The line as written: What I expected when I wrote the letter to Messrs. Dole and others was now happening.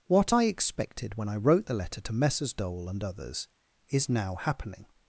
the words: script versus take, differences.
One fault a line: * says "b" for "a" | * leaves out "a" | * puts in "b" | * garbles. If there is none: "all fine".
* says "is" for "was"